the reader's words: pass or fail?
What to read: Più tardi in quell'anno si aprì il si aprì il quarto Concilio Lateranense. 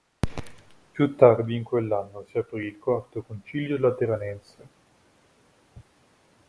fail